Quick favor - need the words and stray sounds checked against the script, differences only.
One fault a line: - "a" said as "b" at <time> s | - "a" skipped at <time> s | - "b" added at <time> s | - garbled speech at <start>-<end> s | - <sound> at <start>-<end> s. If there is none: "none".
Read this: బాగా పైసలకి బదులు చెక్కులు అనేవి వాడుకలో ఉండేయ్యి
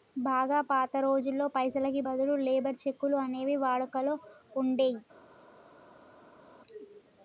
- "పాత రోజుల్లో" added at 0.7 s
- "లేబర్" added at 2.4 s